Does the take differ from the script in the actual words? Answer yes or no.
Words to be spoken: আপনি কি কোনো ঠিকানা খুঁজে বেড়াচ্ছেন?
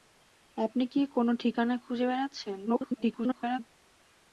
yes